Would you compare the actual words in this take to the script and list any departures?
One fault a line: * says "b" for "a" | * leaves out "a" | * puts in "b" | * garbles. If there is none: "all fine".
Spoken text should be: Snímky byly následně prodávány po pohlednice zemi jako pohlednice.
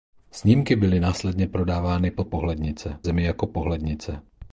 all fine